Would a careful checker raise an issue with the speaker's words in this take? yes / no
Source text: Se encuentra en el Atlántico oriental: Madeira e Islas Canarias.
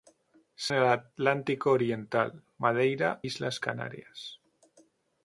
yes